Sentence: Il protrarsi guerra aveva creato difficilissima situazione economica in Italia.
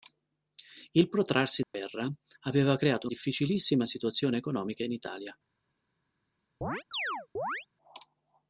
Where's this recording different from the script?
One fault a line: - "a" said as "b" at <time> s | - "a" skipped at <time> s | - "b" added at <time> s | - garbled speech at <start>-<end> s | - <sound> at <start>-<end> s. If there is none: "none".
- dropout at 1.6-1.7 s
- chirp at 6.6-7.7 s